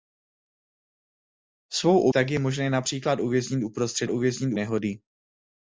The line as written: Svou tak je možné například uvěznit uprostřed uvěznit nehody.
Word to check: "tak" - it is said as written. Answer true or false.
true